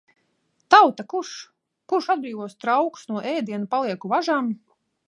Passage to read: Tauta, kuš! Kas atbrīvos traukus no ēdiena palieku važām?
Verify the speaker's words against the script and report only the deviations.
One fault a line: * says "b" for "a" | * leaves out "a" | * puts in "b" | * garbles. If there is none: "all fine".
* says "Kurš" for "Kas"